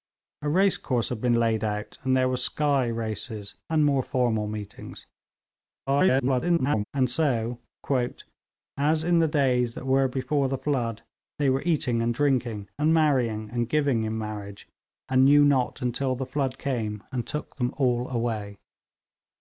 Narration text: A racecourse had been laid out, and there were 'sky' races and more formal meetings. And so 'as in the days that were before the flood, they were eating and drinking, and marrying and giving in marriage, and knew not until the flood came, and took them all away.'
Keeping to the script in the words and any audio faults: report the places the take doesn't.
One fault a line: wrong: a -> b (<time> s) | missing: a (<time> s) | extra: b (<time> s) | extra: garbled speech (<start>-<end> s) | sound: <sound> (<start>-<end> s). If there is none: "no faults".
extra: garbled speech (5.9-6.8 s)